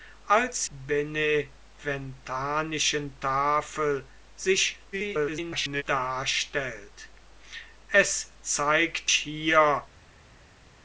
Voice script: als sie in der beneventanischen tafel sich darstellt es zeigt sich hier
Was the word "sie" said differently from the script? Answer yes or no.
yes